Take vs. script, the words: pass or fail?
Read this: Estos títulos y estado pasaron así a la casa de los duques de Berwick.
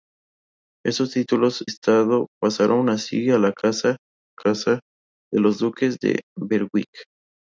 fail